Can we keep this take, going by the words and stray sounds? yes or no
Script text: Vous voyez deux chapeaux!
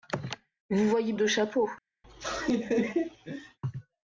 no